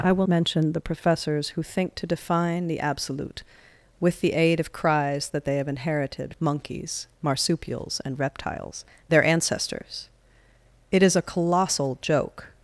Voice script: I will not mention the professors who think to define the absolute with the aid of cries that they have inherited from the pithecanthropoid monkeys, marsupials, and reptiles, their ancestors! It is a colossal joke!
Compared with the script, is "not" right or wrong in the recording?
wrong